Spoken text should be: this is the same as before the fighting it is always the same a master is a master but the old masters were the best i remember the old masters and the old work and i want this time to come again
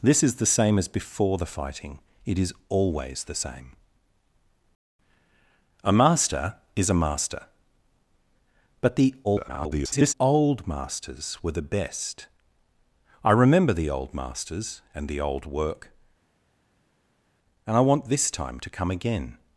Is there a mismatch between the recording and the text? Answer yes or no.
yes